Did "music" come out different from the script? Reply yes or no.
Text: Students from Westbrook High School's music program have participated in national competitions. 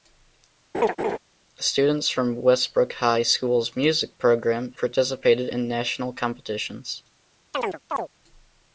no